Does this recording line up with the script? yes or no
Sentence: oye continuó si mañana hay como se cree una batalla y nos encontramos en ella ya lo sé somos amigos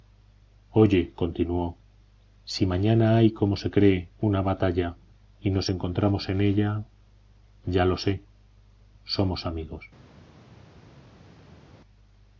yes